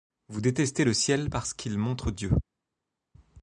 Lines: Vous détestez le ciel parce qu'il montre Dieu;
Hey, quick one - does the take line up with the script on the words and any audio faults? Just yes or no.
yes